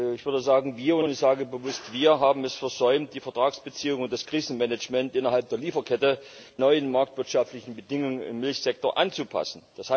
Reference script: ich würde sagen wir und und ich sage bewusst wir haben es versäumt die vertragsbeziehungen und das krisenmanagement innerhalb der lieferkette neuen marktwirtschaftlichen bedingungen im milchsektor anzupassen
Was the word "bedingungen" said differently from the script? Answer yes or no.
no